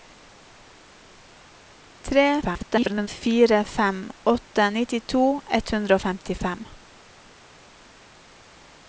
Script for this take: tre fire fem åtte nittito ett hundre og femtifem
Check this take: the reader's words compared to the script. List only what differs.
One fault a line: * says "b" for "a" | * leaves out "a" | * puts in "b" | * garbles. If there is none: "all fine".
* garbles